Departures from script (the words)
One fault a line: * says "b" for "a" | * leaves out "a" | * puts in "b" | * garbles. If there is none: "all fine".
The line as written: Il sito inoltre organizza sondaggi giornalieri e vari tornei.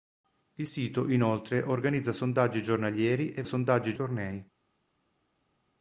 * says "sondaggi" for "vari"